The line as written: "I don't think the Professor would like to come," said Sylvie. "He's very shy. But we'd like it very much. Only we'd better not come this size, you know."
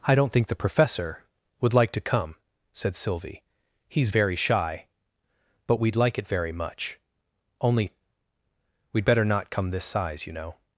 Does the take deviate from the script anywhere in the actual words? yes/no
no